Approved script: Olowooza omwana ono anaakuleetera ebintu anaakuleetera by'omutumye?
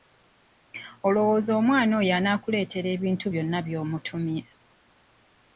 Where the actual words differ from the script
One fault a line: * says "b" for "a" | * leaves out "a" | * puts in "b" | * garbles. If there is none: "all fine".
* says "oyo" for "ono"
* says "byonna" for "anaakuleetera"